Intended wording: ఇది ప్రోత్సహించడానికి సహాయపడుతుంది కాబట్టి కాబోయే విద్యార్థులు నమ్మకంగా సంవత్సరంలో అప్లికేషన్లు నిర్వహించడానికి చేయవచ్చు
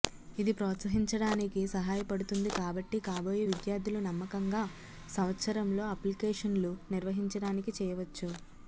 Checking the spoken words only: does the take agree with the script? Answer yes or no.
yes